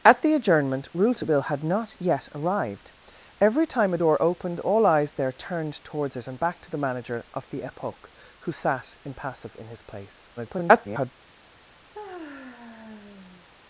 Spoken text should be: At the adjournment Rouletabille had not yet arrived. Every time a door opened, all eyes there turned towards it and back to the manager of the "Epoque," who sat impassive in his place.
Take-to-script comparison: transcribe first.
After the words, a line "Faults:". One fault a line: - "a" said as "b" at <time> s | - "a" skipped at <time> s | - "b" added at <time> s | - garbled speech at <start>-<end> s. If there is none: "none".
At the adjournment Rouletabille had not yet arrived. Every time a door opened, all eyes there turned towards it and back to the manager of the "Epoque," who sat impassive in his place. [garbled]
Faults:
- garbled speech at 10.4-11.1 s